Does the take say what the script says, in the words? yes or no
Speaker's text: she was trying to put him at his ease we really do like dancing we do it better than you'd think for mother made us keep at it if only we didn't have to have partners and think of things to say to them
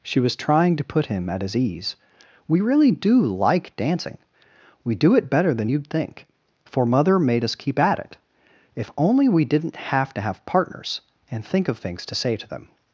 yes